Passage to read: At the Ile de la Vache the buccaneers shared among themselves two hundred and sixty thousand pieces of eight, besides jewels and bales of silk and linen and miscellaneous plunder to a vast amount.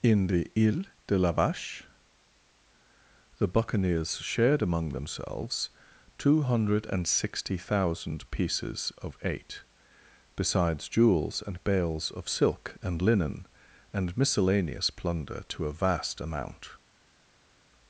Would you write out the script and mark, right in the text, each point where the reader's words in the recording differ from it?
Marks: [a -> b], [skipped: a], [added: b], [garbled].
[At -> In] the Ile de la Vache the buccaneers shared among themselves two hundred and sixty thousand pieces of eight, besides jewels and bales of silk and linen and miscellaneous plunder to a vast amount.